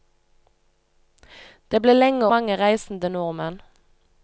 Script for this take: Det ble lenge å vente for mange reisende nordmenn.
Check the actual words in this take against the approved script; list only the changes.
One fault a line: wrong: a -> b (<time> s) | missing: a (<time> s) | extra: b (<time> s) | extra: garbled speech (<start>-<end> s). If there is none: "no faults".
missing: å vente for (2.3 s)